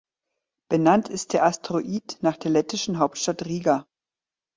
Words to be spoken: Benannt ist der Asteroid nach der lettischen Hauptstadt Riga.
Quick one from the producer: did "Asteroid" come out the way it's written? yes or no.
yes